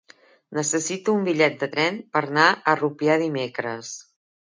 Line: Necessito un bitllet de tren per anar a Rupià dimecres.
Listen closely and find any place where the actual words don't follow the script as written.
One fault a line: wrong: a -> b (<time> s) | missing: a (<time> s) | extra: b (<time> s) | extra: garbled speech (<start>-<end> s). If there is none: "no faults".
no faults